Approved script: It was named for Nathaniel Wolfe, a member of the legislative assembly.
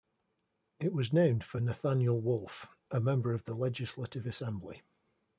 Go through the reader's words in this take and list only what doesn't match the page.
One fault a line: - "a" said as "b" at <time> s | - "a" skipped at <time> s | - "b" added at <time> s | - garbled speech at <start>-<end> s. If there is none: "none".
none